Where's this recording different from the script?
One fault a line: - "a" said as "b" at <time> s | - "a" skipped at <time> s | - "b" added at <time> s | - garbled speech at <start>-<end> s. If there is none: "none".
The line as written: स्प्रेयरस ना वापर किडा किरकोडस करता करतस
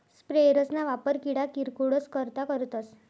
none